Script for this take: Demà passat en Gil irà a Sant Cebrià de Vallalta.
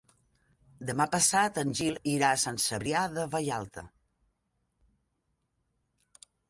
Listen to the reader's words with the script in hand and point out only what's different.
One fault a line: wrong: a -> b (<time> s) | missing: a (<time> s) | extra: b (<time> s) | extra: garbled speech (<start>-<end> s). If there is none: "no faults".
no faults